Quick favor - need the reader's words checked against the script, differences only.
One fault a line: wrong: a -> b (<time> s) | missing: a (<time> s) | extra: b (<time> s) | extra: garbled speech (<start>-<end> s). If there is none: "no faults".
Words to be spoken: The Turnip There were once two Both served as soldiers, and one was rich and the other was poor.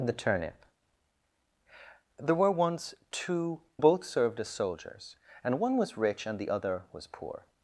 no faults